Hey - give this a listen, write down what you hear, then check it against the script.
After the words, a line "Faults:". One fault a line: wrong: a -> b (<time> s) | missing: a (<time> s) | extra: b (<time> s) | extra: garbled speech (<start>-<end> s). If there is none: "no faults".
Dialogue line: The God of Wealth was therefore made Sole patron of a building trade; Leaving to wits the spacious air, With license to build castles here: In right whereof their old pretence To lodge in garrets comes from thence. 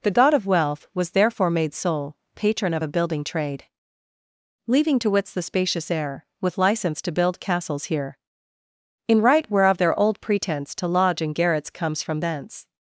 The God of Wealth was therefore made Sole patron of a building trade; Leaving to wits the spacious air, With license to build castles here: In right whereof their old pretence To lodge in garrets comes from thence.
Faults:
no faults